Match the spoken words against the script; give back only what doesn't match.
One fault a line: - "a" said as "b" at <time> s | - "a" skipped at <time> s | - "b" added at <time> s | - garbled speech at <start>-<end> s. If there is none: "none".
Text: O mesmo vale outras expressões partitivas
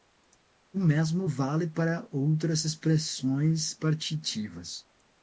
- "para" added at 1.7 s